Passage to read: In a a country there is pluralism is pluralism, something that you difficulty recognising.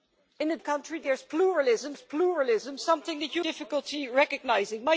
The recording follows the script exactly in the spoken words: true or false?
true